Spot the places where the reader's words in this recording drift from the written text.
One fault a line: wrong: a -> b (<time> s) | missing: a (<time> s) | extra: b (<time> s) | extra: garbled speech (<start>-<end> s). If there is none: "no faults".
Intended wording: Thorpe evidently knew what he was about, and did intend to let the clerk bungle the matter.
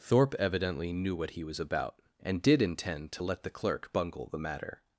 no faults